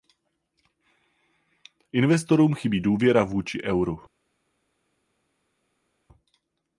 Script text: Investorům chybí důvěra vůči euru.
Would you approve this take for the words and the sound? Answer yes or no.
yes